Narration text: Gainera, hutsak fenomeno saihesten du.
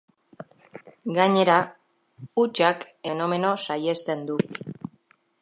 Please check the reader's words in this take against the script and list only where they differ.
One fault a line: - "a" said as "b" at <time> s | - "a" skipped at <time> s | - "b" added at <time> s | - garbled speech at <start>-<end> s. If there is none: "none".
none